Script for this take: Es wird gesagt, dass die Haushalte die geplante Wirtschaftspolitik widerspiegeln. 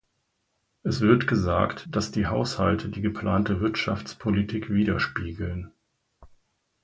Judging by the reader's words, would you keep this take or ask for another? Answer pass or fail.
pass